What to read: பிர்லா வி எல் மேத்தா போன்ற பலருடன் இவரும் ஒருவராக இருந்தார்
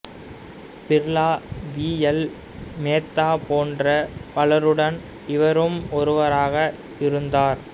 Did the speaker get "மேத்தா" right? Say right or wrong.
right